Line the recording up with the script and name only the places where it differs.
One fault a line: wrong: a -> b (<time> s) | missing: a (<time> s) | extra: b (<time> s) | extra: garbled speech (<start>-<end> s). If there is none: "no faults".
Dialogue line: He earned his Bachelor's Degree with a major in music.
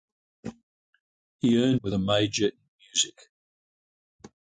missing: his Bachelor's Degree (1.8 s)